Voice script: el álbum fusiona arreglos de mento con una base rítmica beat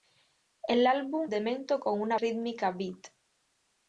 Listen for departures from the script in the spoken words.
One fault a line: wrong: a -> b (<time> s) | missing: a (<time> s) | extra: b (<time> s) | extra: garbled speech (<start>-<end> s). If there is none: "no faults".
missing: fusiona arreglos (1.3 s)
missing: base (2.2 s)